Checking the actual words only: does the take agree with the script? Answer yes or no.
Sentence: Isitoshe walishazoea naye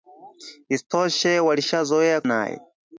yes